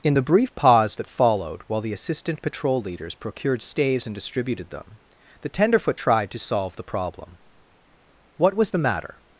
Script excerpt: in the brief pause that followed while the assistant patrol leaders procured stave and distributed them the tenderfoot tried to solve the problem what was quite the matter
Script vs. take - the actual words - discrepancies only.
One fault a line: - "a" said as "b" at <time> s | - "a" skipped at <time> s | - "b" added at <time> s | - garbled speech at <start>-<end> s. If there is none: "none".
- "stave" said as "staves" at 3.6 s
- "quite" skipped at 8.7 s